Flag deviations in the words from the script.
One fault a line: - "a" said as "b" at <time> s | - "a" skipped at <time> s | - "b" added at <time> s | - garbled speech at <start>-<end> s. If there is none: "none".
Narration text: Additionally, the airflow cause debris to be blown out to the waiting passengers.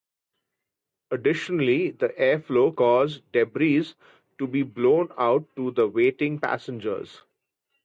none